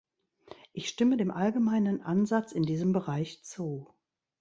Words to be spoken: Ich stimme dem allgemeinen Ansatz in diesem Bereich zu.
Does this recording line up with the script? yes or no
yes